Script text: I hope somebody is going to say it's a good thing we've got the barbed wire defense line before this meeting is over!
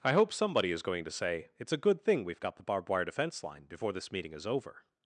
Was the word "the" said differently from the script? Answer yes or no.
no